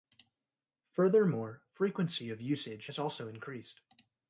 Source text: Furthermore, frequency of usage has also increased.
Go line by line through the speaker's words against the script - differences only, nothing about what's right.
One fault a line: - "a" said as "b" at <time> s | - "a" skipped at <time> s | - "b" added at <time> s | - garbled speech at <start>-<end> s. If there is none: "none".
none